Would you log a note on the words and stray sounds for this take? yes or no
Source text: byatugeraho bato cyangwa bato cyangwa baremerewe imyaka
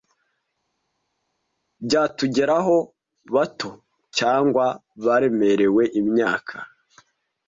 yes